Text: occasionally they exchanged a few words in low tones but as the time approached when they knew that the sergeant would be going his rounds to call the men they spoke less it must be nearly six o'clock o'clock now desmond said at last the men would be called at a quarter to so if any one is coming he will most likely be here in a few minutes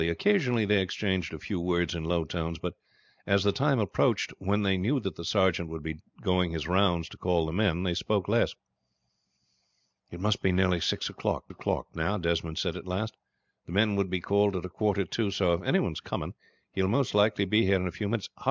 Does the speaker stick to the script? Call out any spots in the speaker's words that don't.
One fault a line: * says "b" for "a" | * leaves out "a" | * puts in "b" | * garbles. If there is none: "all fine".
all fine